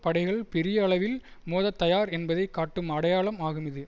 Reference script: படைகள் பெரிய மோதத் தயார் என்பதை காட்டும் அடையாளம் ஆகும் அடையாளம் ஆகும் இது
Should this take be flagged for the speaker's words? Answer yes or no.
yes